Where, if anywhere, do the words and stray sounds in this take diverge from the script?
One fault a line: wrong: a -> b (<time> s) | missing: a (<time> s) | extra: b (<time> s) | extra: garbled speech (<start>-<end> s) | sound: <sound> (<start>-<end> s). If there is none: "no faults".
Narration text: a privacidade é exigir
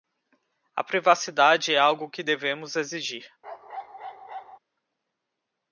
extra: algo que devemos (1.8 s)
sound: bark (3.4-4.6 s)